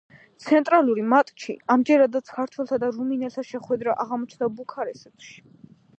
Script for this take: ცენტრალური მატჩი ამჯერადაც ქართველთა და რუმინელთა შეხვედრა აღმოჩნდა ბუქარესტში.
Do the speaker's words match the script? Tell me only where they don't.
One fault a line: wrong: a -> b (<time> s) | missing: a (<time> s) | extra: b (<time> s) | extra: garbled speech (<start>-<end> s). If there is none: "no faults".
no faults